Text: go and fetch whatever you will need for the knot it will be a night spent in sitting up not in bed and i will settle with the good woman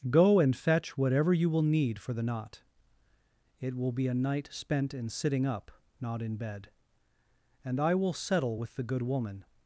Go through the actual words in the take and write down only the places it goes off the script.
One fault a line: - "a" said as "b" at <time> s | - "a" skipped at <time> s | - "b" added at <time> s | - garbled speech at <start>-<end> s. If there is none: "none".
none